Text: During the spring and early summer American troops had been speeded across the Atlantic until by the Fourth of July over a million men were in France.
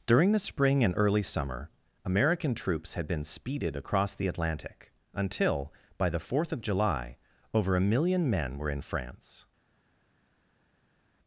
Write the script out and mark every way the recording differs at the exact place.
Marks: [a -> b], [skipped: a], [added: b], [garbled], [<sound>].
During the spring and early summer American troops had been speeded across the Atlantic until by the Fourth of July over a million men were in France.